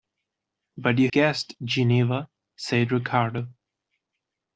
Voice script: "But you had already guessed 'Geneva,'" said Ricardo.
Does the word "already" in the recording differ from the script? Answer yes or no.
yes